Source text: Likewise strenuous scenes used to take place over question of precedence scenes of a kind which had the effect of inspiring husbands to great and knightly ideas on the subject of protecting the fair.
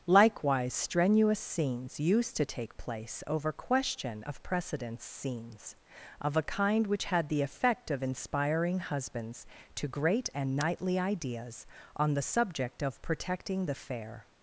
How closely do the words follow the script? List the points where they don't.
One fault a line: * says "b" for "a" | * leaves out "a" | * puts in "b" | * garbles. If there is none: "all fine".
all fine